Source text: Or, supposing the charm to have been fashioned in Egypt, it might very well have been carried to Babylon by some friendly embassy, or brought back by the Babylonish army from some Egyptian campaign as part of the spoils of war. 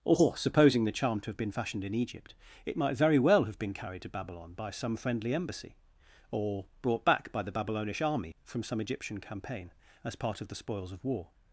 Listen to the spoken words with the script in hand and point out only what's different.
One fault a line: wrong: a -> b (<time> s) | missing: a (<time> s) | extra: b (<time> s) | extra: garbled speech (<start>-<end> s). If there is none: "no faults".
no faults